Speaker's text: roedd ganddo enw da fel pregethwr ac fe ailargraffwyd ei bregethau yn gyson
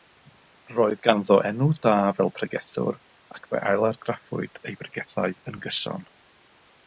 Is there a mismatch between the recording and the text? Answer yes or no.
no